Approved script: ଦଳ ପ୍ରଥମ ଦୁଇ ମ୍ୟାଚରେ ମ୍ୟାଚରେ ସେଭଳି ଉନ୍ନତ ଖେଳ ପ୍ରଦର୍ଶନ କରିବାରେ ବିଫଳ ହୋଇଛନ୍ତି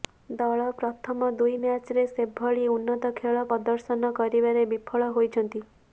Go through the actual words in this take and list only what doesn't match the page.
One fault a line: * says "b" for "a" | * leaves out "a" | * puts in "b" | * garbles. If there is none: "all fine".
* leaves out "ମ୍ୟାଚରେ"